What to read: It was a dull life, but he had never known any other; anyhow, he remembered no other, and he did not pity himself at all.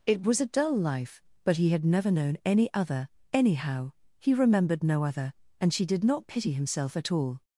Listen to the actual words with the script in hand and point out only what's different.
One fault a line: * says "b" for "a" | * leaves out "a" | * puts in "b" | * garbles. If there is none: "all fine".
* says "she" for "he"